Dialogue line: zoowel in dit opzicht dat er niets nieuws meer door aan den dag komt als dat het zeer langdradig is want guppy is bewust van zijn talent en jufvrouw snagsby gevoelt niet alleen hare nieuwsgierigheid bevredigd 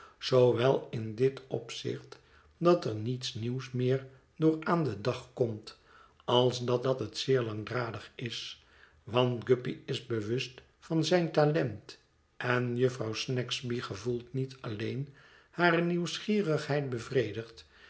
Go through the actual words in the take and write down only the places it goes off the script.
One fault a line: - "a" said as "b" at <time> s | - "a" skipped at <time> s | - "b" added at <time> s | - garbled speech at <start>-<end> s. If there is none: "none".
- "dat" added at 6.8 s